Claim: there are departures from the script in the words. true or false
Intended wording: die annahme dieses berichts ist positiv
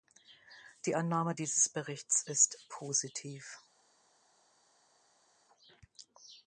false